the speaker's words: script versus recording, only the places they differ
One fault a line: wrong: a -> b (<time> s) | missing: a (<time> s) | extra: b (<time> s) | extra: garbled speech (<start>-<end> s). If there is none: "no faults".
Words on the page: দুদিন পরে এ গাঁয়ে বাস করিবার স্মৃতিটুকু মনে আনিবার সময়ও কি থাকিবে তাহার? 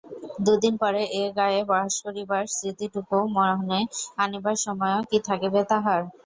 no faults